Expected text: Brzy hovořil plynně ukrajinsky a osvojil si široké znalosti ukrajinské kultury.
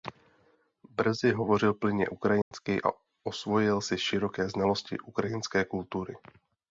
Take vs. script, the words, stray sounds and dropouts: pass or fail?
fail